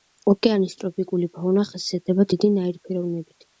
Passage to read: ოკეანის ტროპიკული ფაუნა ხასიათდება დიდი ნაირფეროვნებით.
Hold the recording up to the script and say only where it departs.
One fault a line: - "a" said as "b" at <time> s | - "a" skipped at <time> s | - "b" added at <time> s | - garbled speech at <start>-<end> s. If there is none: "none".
none